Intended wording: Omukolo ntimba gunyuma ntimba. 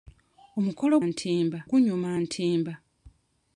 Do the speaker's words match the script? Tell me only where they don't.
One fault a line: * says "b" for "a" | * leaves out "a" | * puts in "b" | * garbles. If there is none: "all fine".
all fine